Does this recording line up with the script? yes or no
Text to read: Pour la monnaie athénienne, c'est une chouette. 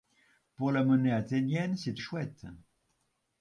no